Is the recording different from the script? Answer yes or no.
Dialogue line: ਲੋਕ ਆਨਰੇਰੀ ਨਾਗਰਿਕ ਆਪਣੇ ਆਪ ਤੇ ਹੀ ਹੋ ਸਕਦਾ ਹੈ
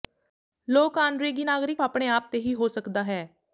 no